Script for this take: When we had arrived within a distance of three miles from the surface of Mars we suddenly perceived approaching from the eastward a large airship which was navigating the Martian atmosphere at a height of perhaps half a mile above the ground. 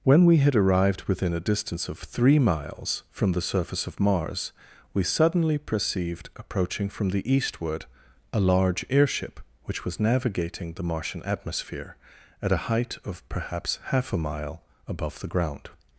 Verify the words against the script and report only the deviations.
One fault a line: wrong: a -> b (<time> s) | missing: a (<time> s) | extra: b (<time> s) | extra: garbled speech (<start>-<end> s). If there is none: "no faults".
no faults